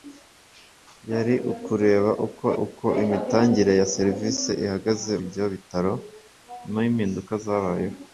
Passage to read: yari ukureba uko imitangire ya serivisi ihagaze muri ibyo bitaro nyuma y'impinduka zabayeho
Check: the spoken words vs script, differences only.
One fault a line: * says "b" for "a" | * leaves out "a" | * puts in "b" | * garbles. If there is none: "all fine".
* puts in "uko"
* leaves out "muri"